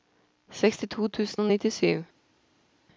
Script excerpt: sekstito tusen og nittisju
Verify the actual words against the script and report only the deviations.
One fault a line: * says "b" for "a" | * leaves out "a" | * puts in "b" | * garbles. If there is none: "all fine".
all fine